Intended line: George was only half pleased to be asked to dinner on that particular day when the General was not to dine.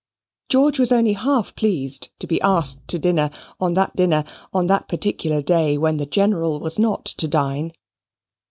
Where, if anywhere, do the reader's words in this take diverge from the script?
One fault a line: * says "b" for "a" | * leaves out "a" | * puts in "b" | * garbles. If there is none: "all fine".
* puts in "dinner on that"